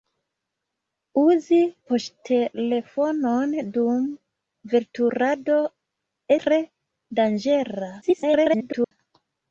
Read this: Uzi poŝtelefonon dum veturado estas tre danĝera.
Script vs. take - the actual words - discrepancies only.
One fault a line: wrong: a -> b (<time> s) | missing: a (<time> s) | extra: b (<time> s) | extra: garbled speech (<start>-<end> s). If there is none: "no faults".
missing: estas (5.6 s)
extra: garbled speech (8.0-8.9 s)